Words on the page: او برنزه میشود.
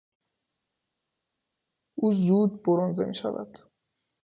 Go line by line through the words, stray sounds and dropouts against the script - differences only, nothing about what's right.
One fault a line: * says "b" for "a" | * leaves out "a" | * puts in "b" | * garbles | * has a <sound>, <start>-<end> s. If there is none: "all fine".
* puts in "زود"